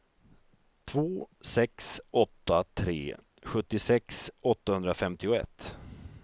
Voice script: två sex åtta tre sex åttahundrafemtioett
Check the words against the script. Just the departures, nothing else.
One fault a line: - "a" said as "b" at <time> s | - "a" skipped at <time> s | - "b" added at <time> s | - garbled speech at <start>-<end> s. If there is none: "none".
- "sex" said as "sjuttiosex" at 3.4 s